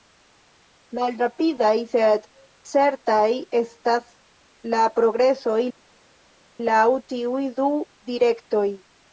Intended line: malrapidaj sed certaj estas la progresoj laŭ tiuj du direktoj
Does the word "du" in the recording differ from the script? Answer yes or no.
no